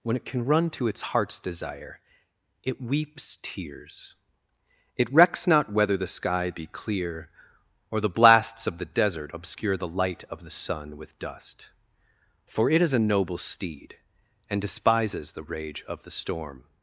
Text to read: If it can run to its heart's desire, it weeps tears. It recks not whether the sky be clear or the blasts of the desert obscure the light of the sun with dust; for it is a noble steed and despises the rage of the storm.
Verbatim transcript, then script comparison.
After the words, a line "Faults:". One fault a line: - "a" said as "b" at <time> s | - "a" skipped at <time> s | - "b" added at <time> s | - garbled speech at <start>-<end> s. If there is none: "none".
When it can run to its heart's desire, it weeps tears. It recks not whether the sky be clear or the blasts of the desert obscure the light of the sun with dust; for it is a noble steed and despises the rage of the storm.
Faults:
- "If" said as "When" at 0.0 s